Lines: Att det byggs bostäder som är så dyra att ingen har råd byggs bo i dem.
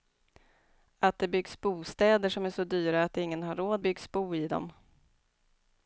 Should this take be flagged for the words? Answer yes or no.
no